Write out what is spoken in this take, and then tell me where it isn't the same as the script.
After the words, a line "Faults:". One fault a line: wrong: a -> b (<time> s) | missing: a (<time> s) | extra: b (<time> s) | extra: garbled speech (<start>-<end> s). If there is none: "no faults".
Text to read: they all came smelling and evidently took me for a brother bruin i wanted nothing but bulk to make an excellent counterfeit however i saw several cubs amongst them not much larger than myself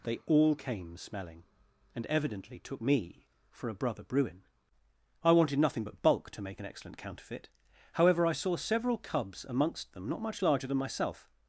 they all came smelling and evidently took me for a brother bruin i wanted nothing but bulk to make an excellent counterfeit however i saw several cubs amongst them not much larger than myself
Faults:
no faults